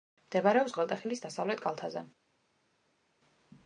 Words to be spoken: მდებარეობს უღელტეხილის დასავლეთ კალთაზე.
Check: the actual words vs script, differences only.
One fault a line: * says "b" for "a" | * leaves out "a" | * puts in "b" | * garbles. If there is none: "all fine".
all fine